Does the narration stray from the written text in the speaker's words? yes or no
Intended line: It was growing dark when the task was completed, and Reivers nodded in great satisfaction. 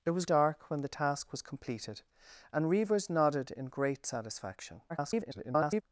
yes